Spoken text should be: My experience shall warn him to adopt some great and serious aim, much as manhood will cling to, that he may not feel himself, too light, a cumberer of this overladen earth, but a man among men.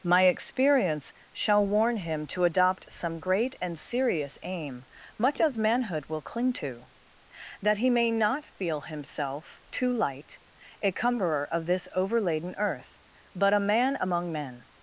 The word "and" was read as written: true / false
true